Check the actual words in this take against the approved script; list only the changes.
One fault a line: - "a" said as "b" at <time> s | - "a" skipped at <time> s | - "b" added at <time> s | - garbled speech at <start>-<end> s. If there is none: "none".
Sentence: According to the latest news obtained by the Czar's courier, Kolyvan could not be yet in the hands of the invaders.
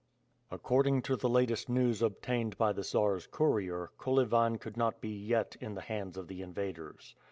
none